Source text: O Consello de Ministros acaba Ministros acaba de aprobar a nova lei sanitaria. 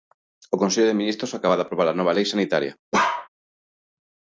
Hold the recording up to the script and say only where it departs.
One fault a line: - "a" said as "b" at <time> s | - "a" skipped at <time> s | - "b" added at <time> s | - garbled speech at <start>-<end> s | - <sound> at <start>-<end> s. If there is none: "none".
- "Ministros acaba" skipped at 1.6 s
- bark at 2.9-3.3 s